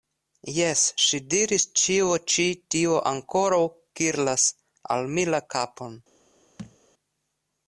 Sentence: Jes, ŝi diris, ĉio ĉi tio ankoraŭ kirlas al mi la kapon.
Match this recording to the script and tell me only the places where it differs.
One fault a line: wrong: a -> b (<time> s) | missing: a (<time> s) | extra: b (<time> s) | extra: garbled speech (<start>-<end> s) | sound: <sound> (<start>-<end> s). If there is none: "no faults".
sound: thud (6.6-6.8 s)